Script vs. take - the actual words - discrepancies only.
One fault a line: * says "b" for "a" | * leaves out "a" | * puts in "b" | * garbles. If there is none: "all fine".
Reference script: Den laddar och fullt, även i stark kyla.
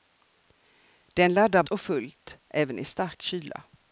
all fine